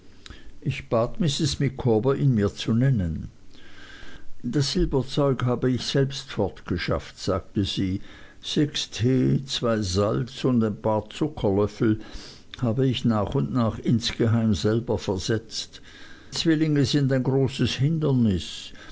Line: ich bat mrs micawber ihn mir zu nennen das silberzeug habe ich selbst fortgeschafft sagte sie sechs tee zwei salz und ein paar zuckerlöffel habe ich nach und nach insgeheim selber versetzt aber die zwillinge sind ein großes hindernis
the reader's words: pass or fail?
fail